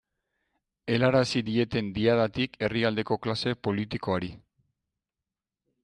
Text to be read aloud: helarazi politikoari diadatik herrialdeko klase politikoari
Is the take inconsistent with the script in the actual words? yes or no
yes